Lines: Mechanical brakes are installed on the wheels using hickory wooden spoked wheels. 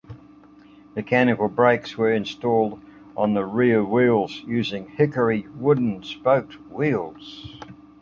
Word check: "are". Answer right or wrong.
wrong